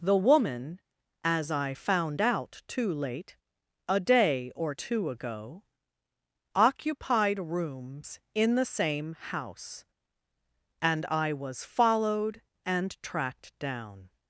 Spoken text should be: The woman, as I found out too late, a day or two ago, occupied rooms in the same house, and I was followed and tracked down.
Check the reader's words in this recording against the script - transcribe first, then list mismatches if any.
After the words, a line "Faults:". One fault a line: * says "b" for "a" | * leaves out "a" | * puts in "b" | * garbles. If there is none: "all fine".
The woman, as I found out too late, a day or two ago, occupied rooms in the same house, and I was followed and tracked down.
Faults:
all fine